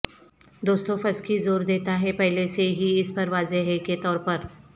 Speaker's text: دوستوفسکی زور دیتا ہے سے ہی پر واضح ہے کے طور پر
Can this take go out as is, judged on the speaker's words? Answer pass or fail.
fail